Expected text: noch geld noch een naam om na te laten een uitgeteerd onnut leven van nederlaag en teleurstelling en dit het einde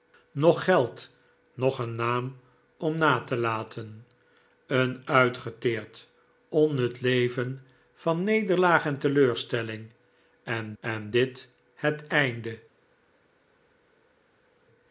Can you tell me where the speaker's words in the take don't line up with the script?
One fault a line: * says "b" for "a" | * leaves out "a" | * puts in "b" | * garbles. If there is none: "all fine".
* puts in "en"